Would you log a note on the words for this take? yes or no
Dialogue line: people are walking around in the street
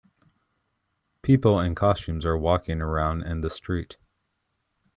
yes